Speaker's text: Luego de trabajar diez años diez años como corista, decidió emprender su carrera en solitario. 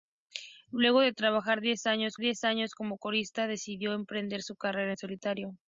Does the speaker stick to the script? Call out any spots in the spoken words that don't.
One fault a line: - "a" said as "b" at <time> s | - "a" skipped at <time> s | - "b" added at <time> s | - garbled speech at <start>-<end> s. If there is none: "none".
none